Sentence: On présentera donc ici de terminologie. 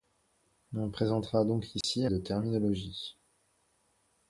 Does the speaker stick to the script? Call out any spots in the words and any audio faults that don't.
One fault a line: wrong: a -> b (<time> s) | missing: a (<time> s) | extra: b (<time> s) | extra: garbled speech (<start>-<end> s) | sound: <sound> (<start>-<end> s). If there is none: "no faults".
sound: dropout (1.8-1.8 s)